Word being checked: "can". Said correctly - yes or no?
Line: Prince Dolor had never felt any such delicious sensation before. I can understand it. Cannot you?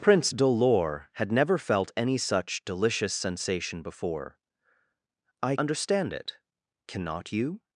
no